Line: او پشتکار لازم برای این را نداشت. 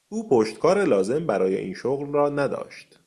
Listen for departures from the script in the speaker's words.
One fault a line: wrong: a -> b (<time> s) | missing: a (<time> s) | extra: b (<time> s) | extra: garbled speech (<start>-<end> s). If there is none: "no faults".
extra: شغل (1.7 s)